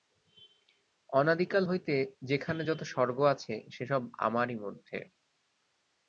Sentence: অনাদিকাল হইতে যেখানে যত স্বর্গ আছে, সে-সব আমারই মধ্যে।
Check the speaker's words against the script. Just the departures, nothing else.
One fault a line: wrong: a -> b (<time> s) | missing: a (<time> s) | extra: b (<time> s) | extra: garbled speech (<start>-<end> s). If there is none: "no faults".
no faults